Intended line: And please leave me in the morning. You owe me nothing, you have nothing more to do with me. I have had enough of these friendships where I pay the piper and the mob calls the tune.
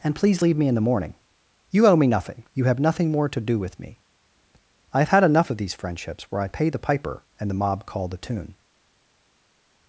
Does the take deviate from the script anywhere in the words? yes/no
yes